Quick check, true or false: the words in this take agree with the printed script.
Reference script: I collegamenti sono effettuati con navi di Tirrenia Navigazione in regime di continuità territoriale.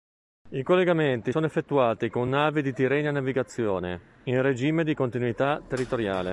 true